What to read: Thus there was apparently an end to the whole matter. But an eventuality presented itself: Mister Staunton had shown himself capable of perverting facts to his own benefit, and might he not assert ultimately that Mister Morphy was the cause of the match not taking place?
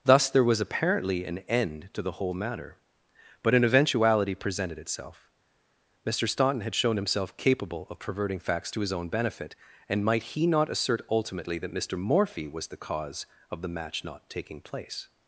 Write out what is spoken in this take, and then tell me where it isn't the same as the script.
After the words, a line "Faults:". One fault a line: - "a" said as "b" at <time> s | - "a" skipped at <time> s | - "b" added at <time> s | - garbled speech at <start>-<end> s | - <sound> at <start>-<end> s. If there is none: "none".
Thus there was apparently an end to the whole matter. But an eventuality presented itself: Mister Staunton had shown himself capable of perverting facts to his own benefit, and might he not assert ultimately that Mister Morphy was the cause of the match not taking place?
Faults:
none